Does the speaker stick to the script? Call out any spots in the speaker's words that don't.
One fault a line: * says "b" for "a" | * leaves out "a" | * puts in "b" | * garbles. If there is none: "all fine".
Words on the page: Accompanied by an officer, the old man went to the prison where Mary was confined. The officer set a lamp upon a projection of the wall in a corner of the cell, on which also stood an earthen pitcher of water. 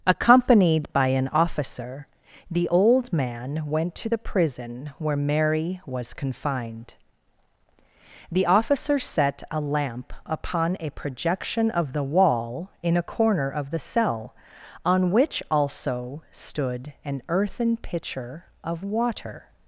all fine